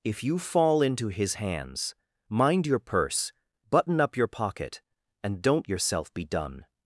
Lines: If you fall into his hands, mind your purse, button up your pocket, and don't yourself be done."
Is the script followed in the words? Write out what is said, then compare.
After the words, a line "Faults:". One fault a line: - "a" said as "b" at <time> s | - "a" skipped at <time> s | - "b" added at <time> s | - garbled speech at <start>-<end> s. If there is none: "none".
If you fall into his hands, mind your purse, button up your pocket, and don't yourself be done."
Faults:
none